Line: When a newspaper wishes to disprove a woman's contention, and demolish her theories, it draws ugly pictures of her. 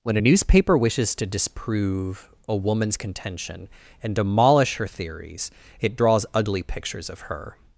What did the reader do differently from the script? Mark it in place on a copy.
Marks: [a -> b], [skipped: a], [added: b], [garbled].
When a newspaper wishes to disprove a woman's contention, and demolish her theories, it draws ugly pictures of her.